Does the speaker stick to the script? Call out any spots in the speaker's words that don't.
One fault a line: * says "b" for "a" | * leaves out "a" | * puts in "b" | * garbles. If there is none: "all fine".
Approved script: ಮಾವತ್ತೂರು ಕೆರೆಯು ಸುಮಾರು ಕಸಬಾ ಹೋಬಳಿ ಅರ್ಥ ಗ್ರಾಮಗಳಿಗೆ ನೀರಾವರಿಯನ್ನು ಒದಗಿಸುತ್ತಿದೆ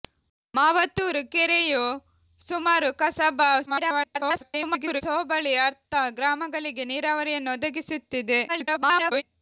* garbles
* garbles